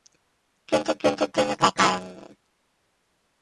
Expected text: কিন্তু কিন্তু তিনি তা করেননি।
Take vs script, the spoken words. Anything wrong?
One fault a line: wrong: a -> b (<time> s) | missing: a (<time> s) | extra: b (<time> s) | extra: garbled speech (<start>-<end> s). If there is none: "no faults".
no faults